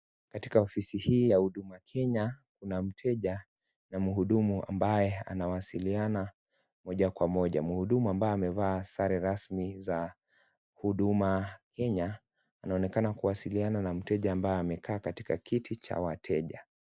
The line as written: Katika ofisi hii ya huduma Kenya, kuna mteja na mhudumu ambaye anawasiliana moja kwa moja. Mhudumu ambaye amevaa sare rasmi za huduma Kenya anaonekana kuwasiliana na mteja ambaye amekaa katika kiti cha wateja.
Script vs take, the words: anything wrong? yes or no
no